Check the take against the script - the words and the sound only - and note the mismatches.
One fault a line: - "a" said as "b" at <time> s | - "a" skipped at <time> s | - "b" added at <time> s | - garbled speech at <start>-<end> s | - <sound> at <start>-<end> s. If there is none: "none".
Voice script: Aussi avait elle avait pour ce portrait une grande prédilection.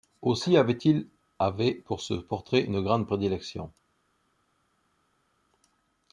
- "elle" said as "il" at 0.8 s